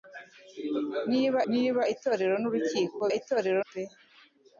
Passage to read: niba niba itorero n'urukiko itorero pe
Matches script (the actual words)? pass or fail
pass